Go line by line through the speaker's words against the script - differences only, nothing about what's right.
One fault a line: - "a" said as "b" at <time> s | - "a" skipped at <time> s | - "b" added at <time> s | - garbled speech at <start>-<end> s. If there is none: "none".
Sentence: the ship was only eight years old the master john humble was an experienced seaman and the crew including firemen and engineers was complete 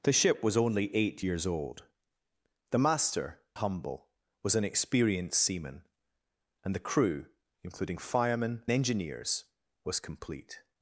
- "john" skipped at 3.4 s
- "and" skipped at 8.6 s